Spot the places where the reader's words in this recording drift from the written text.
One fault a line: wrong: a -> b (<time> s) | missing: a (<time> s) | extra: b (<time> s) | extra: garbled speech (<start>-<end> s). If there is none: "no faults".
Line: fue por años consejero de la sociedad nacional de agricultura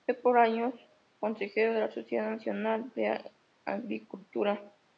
no faults